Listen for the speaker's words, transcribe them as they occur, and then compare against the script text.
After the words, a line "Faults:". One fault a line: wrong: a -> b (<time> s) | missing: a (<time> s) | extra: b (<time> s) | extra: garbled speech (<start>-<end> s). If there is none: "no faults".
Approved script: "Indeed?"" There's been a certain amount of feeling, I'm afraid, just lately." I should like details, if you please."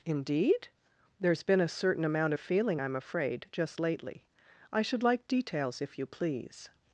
"Indeed?"" There's been a certain amount of feeling, I'm afraid, just lately." I should like details, if you please."
Faults:
no faults